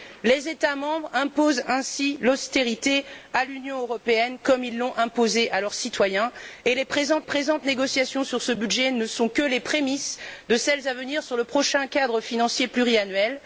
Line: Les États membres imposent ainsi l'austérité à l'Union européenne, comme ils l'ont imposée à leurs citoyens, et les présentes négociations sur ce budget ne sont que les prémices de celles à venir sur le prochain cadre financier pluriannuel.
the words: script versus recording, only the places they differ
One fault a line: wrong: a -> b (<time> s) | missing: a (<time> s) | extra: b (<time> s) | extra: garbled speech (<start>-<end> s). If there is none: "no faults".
extra: présentes (7.2 s)